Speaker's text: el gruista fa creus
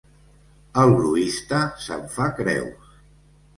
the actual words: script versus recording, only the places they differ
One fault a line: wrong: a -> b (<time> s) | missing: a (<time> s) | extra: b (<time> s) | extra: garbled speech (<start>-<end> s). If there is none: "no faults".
extra: se'n (1.9 s)